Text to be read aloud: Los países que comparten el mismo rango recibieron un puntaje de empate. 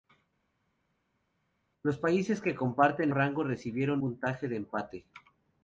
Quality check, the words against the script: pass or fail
fail